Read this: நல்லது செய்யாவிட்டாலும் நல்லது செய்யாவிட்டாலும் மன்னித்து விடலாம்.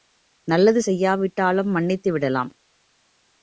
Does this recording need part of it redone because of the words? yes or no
yes